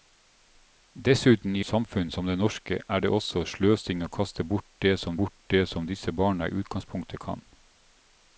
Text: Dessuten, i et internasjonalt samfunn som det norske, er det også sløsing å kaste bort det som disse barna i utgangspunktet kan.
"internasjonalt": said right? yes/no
no